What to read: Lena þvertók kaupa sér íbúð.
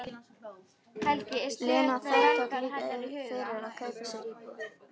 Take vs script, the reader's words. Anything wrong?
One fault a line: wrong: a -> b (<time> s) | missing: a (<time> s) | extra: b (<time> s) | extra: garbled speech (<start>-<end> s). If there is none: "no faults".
extra: líka fyrir að (2.6 s)